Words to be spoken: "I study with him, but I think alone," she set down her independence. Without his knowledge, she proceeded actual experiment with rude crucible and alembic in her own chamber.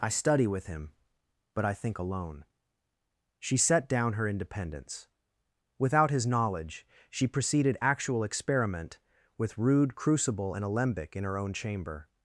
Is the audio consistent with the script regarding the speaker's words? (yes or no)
yes